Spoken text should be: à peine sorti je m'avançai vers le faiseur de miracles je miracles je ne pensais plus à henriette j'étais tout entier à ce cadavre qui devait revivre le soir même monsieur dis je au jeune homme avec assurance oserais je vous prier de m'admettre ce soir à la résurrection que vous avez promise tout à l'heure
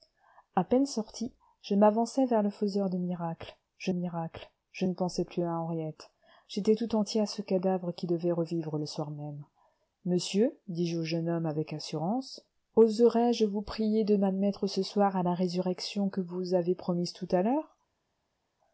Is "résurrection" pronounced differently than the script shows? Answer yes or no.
no